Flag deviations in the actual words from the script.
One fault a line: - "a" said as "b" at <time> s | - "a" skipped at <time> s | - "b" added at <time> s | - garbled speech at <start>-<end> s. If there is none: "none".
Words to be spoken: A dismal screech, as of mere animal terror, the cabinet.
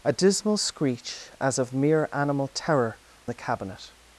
none